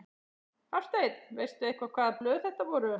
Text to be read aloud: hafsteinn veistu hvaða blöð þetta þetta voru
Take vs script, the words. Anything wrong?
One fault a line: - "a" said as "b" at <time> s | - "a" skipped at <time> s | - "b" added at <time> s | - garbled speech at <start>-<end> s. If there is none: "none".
- "eitthvað" added at 1.7 s
- "þetta" skipped at 2.7 s